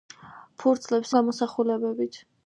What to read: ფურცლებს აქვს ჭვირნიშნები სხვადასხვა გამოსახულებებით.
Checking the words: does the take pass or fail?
fail